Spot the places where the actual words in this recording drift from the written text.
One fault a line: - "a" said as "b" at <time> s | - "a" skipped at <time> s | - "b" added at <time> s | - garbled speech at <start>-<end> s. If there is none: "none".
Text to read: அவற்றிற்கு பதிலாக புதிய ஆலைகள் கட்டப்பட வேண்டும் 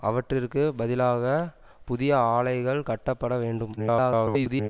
- garbled speech at 3.8-4.7 s